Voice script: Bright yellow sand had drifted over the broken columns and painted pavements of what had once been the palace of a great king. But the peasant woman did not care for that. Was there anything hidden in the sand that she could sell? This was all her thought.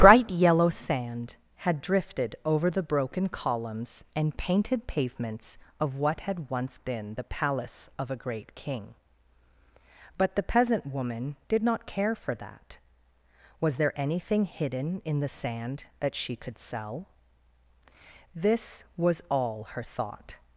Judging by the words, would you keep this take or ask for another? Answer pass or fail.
pass